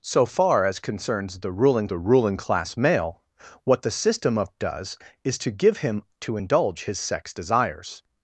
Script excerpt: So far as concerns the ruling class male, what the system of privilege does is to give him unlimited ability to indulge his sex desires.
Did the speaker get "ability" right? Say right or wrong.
wrong